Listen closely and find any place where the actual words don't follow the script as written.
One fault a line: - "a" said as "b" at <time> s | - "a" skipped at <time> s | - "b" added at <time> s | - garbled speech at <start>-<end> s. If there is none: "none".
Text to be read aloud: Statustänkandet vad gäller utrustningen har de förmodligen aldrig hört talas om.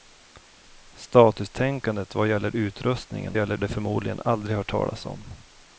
- "har" said as "gäller" at 3.4 s